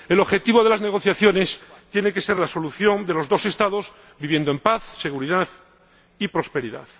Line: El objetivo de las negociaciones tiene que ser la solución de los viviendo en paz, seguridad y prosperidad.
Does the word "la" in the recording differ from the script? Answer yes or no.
no